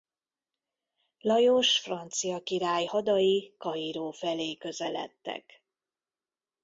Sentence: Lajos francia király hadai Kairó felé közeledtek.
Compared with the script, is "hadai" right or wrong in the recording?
right